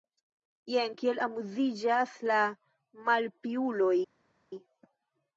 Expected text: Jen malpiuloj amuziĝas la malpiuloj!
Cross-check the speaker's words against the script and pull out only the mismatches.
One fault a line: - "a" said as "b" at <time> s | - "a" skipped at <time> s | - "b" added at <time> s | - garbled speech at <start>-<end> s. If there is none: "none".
- "malpiuloj" said as "kiel" at 1.0 s